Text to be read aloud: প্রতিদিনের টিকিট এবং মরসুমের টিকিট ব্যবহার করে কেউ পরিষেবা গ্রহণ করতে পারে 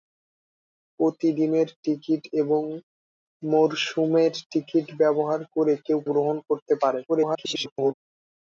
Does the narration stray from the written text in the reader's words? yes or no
yes